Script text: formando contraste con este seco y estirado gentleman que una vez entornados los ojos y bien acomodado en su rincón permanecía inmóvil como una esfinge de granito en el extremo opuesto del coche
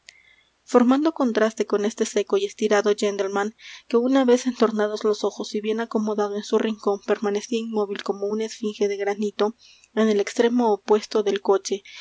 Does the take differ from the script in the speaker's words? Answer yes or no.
no